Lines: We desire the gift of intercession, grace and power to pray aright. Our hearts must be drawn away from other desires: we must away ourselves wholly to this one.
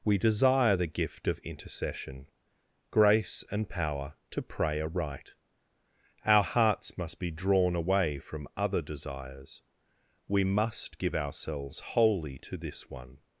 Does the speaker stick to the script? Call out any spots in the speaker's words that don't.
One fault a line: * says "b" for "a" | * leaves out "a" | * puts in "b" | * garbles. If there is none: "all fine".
* says "give" for "away"